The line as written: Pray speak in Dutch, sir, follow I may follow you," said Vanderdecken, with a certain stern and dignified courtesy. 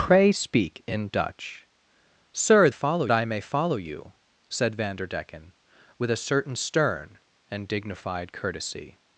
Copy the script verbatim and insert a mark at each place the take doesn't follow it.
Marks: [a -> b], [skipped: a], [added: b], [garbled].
Pray speak in Dutch, sir, follow I may follow you," said Vanderdecken, with a certain stern and dignified courtesy.